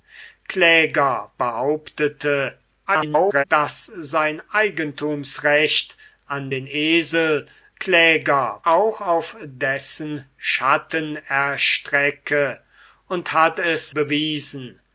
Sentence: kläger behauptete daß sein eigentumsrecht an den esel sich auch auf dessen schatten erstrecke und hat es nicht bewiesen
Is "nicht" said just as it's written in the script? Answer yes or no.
no